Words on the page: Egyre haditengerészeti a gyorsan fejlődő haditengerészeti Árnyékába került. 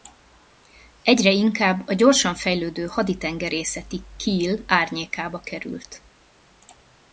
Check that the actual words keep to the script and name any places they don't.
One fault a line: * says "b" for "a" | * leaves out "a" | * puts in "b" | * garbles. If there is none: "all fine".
* says "inkább" for "haditengerészeti"
* puts in "Kiel"